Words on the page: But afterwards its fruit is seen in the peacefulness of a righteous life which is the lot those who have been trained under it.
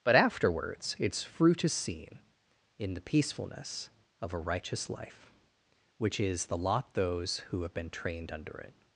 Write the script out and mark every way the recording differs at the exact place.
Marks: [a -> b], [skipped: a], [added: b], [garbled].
But afterwards its fruit is seen in the peacefulness of a righteous life which is the lot those who have been trained under it.